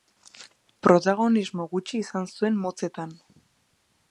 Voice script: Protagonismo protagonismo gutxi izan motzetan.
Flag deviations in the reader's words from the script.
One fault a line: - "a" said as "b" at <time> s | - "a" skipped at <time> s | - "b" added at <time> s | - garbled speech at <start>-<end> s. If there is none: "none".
- "protagonismo" skipped at 1.7 s
- "zuen" added at 2.4 s